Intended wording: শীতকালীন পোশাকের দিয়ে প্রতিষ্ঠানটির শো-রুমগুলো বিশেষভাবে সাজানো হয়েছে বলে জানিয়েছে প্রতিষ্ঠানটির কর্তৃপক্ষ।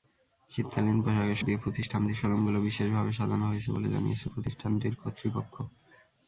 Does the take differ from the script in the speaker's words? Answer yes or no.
no